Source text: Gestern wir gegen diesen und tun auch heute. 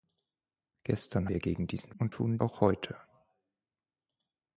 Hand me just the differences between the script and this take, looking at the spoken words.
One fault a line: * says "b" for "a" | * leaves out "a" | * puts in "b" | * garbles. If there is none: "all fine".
all fine